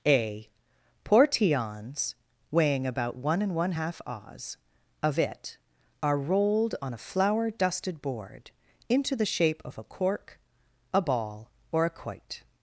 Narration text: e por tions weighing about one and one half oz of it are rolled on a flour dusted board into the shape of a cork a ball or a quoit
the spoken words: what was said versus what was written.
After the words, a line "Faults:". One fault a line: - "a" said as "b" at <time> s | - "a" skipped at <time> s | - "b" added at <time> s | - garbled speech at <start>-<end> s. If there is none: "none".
a portions weighing about one and one half oz of it are rolled on a flour dusted board into the shape of a cork a ball or a quoit
Faults:
- "e por tions" said as "a portions" at 0.1 s